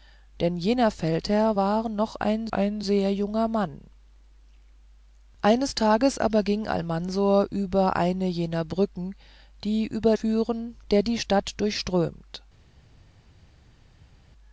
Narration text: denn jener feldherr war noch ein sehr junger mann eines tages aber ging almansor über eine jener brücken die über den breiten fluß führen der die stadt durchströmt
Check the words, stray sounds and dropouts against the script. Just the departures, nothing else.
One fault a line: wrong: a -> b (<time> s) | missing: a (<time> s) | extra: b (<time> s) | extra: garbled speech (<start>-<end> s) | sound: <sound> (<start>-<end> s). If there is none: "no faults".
extra: ein (2.5 s)
missing: den breiten fluß (10.2 s)